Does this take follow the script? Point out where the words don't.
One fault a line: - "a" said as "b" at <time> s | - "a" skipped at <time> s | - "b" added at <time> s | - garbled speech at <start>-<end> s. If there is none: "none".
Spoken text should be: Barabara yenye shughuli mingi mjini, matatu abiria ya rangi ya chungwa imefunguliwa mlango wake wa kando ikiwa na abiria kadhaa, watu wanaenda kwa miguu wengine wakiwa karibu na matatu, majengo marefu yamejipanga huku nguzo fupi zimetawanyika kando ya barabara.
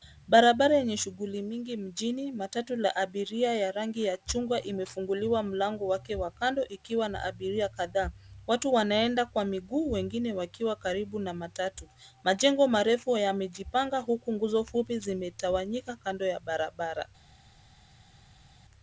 - "la" added at 2.8 s